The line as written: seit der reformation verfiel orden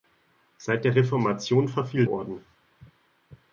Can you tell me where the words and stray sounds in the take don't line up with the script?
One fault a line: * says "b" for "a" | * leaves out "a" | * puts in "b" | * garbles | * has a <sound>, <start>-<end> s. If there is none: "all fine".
all fine